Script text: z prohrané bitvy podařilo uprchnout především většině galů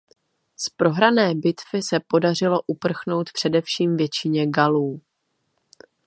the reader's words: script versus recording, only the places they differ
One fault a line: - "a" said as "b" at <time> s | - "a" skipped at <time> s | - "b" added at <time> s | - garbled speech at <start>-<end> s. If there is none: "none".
- "se" added at 1.8 s